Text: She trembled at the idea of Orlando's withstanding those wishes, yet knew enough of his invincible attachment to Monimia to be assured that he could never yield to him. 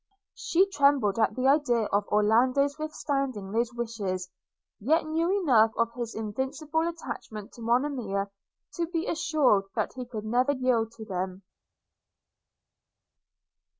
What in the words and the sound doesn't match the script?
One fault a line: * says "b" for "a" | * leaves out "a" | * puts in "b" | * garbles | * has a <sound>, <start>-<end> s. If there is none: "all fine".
* says "them" for "him"